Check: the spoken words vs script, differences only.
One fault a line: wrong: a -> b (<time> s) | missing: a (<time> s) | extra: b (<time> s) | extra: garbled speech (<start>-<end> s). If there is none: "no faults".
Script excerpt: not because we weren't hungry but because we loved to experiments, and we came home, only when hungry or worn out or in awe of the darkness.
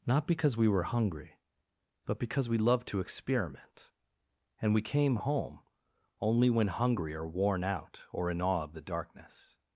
wrong: weren't -> were (0.7 s)
wrong: experiments -> experiment (3.0 s)